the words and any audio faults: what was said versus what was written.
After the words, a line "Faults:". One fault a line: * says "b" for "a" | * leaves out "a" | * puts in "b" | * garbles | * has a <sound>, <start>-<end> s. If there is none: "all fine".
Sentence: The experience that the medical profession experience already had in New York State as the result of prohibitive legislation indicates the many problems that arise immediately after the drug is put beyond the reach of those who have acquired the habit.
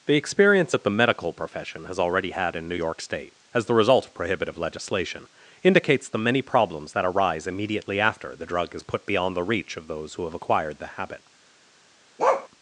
The experience that the medical profession has already had in New York State as the result of prohibitive legislation indicates the many problems that arise immediately after the drug is put beyond the reach of those who have acquired the habit.
Faults:
* says "has" for "experience"
* has a bark, 12.2-12.5 s